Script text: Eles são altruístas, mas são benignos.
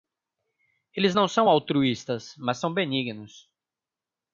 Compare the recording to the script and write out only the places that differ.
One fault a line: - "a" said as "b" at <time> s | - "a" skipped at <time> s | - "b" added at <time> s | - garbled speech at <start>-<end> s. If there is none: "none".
- "não" added at 1.1 s